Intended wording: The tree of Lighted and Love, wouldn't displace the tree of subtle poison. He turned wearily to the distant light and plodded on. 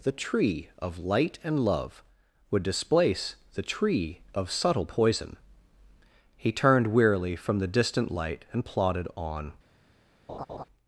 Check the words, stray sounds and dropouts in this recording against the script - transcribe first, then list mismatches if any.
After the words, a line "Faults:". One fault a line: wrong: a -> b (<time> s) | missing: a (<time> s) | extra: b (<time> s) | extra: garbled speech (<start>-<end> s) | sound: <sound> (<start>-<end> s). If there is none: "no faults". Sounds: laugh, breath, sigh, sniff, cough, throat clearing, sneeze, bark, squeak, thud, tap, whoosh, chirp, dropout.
The tree of Light and Love, would displace the tree of subtle poison. He turned wearily from the distant light and plodded on.
Faults:
wrong: Lighted -> Light (1.0 s)
wrong: wouldn't -> would (2.5 s)
wrong: to -> from (7.3 s)
sound: laugh (10.3-10.6 s)